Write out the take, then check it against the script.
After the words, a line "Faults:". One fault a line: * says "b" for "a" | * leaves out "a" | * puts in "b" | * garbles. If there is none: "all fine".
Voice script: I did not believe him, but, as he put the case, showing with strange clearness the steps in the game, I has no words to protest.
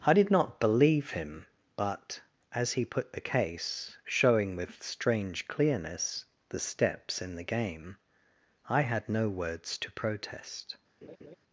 I did not believe him, but, as he put the case, showing with strange clearness the steps in the game, I had no words to protest.
Faults:
* says "had" for "has"